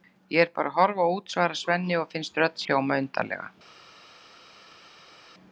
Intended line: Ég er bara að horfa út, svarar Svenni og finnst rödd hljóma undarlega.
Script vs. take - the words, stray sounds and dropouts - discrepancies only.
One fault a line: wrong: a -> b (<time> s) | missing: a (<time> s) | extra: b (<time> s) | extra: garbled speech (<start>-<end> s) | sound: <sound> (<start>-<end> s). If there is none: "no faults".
no faults